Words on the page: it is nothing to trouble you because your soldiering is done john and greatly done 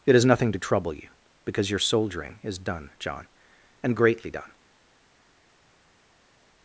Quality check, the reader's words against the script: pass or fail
pass